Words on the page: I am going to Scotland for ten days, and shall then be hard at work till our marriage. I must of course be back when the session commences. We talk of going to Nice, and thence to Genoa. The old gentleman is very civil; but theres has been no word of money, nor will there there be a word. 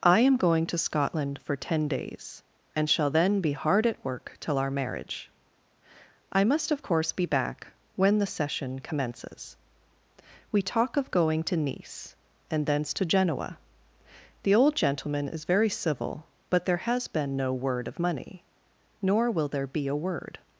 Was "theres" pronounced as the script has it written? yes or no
no